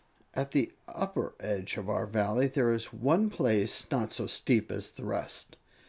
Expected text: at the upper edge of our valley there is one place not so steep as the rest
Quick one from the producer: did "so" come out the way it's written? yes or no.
yes